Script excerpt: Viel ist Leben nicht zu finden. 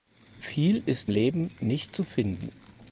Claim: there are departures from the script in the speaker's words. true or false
false